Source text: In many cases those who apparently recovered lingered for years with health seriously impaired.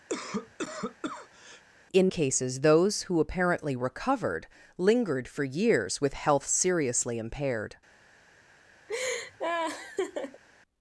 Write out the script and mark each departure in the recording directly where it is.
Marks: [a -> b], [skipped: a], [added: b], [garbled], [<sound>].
[cough] In [skipped: many] cases those who apparently recovered lingered for years with health seriously impaired. [laugh]